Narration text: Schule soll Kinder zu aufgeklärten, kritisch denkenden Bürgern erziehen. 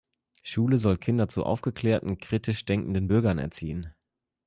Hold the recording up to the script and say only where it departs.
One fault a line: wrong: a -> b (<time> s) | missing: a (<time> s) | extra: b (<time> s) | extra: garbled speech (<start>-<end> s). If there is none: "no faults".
no faults